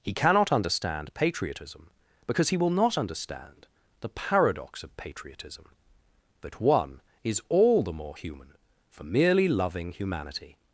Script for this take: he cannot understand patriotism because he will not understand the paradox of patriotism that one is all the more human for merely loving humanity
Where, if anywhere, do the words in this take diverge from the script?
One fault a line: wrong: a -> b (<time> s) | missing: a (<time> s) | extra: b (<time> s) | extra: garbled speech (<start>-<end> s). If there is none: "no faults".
no faults